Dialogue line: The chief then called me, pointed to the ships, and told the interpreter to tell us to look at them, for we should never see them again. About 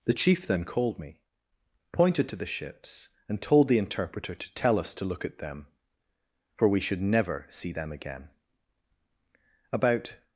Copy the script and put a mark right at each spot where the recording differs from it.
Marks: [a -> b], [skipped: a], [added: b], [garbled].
The chief then called me, pointed to the ships, and told the interpreter to tell us to look at them, for we should never see them again. About